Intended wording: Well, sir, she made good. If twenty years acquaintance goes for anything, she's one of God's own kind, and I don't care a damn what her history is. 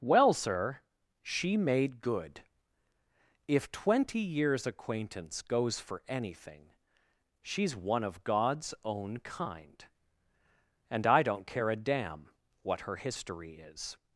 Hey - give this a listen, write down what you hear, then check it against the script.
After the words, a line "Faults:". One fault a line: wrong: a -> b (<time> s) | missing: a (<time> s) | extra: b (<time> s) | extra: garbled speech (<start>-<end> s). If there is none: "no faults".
Well, sir, she made good. If twenty years acquaintance goes for anything, she's one of God's own kind, and I don't care a damn what her history is.
Faults:
no faults